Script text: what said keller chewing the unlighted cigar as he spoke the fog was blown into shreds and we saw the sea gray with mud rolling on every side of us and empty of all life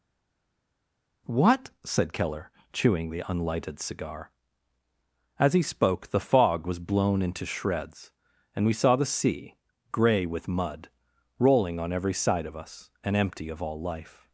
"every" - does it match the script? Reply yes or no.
yes